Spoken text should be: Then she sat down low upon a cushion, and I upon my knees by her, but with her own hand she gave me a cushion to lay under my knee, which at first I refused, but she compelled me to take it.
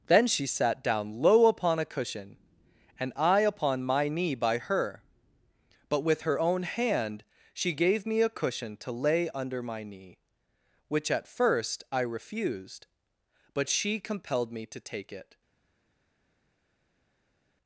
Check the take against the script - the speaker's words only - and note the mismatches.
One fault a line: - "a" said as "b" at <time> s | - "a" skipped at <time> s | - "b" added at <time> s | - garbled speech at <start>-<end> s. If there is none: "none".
- "knees" said as "knee" at 4.1 s